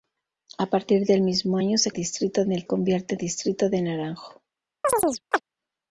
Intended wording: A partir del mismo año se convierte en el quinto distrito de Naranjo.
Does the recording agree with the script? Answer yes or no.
no